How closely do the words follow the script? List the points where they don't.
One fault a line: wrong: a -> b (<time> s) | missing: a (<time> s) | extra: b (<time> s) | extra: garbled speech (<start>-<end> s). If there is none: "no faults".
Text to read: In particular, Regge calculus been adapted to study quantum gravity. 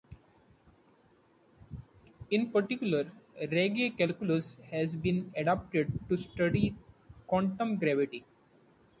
extra: has (4.7 s)